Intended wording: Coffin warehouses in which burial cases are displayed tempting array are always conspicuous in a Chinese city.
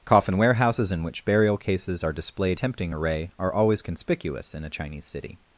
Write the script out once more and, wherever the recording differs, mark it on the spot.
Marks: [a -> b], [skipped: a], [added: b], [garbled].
Coffin warehouses in which burial cases are displayed tempting array are always conspicuous in a Chinese city.